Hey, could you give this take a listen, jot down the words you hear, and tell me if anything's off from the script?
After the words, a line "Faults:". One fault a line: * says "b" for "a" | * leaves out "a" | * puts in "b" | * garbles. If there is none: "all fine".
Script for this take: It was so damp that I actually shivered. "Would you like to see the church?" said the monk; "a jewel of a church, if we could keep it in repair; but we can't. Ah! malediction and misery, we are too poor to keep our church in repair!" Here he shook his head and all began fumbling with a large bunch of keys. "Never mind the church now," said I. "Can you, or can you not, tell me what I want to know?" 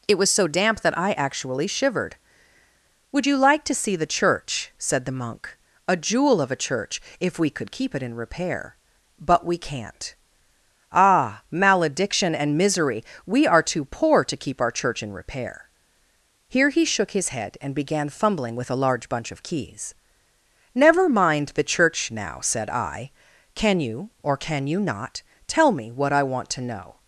It was so damp that I actually shivered. "Would you like to see the church?" said the monk; "a jewel of a church, if we could keep it in repair; but we can't. Ah! malediction and misery, we are too poor to keep our church in repair!" Here he shook his head and began fumbling with a large bunch of keys. "Never mind the church now," said I. "Can you, or can you not, tell me what I want to know?"
Faults:
* leaves out "all"